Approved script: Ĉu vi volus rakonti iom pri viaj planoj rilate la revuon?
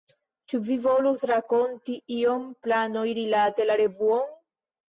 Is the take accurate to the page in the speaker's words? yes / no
no